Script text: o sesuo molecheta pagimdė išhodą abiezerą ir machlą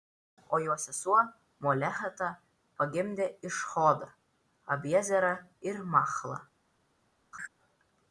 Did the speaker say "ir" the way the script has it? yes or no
yes